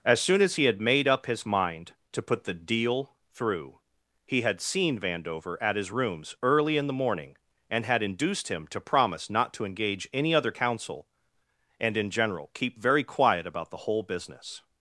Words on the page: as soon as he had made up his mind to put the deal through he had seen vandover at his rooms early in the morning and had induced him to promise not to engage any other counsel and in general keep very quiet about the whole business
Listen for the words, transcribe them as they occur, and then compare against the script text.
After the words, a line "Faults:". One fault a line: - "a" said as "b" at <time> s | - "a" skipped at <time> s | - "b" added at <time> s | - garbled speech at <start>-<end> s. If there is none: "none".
as soon as he had made up his mind to put the deal through he had seen vandover at his rooms early in the morning and had induced him to promise not to engage any other counsel and in general keep very quiet about the whole business
Faults:
none